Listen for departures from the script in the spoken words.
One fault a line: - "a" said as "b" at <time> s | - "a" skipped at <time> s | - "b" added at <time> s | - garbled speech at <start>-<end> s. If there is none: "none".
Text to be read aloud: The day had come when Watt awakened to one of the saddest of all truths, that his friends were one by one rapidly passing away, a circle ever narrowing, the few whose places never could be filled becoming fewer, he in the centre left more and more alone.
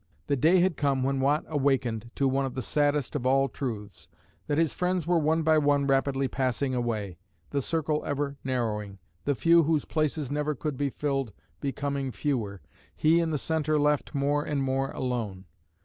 - "a" said as "the" at 7.5 s